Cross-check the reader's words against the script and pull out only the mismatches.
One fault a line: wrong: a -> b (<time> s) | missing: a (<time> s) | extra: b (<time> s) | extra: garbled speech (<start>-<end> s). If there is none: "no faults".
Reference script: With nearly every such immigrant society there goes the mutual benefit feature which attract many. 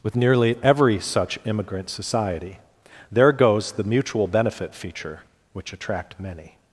no faults